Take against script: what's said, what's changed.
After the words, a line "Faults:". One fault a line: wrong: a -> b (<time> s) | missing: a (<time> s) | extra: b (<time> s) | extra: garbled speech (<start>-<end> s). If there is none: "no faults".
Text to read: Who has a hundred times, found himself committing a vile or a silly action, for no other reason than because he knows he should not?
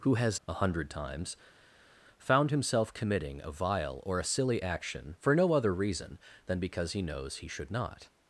Who has a hundred times, found himself committing a vile or a silly action, for no other reason than because he knows he should not?
Faults:
no faults